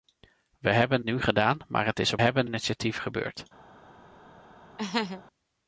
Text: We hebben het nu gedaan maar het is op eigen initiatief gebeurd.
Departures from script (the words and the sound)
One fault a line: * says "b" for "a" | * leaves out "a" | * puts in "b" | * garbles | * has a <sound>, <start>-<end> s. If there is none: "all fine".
* leaves out "het"
* says "hebben" for "eigen"
* has a laugh, 4.8-5.2 s